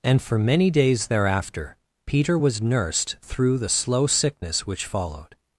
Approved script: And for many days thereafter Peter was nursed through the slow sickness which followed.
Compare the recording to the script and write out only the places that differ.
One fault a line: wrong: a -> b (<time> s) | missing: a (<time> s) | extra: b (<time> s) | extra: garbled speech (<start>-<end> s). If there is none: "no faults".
no faults